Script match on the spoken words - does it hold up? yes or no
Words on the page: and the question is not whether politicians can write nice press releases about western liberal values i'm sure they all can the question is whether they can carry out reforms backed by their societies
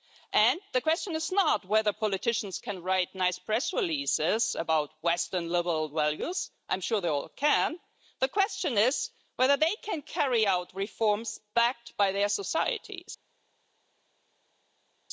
yes